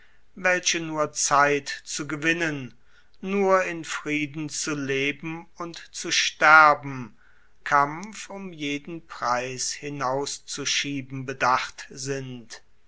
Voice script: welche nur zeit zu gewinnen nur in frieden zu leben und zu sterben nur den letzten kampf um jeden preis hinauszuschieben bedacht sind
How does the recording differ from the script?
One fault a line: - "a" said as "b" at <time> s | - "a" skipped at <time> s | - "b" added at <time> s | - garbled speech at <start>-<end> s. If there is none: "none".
- "nur den letzten" skipped at 7.2 s